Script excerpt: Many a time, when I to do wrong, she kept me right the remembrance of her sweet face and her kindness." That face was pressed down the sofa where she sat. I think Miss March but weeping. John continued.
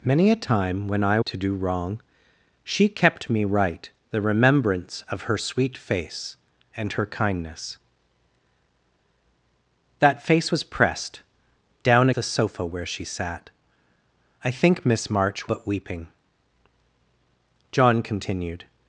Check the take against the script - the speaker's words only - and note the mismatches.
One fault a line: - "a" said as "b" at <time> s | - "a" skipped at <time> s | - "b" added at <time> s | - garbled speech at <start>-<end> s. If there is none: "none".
none